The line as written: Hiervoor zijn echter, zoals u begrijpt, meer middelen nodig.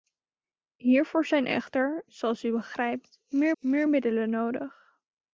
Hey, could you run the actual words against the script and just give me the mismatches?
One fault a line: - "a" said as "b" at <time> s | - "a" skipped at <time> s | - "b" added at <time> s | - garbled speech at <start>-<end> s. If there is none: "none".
- "meer" added at 3.6 s